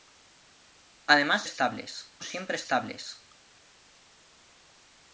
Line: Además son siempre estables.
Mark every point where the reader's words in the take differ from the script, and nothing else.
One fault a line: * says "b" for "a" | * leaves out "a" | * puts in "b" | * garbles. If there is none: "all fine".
* says "estables" for "son"